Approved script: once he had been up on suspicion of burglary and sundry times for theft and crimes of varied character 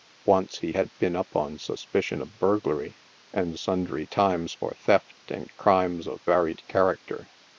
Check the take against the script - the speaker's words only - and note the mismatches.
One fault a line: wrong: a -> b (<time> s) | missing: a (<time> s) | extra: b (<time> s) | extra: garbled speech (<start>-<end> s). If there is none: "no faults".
no faults